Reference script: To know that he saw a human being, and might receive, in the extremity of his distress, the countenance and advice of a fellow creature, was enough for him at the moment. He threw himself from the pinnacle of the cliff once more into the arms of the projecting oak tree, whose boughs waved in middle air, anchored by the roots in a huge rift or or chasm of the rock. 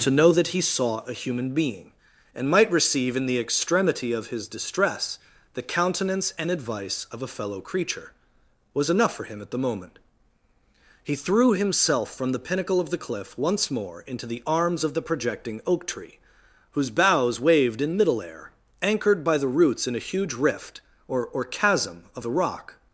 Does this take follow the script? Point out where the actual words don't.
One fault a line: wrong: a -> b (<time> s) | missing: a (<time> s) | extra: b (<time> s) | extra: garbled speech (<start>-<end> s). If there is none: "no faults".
no faults